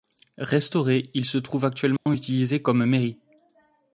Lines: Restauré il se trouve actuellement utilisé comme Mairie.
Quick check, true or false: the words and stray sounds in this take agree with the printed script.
false